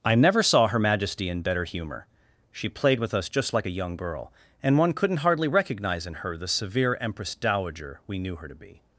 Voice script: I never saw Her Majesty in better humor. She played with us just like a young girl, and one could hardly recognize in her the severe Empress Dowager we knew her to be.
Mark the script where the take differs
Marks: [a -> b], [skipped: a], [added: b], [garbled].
I never saw Her Majesty in better humor. She played with us just like a young girl, and one [could -> couldn't] hardly recognize in her the severe Empress Dowager we knew her to be.